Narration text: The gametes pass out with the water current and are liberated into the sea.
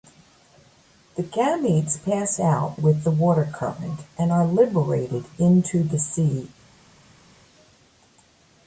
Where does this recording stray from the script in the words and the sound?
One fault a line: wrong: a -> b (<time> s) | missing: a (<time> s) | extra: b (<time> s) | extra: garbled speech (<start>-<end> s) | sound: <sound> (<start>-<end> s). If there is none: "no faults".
no faults